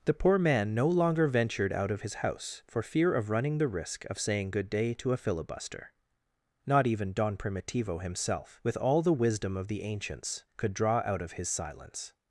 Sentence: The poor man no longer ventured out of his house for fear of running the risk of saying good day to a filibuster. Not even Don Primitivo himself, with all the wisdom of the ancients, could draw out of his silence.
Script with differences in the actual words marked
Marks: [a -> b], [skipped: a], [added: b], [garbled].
The poor man no longer ventured out of his house for fear of running the risk of saying good day to a filibuster. Not even Don Primitivo himself, with all the wisdom of the ancients, could draw out of his silence.